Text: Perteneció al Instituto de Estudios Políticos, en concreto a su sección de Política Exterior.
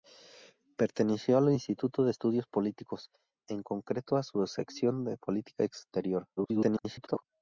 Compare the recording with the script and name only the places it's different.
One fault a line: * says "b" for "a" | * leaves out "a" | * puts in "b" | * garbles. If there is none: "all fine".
* garbles